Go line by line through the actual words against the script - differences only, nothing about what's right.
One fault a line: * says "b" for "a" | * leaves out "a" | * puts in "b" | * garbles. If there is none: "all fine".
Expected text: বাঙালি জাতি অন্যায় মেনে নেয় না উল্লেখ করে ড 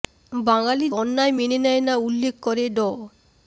* leaves out "জাতি"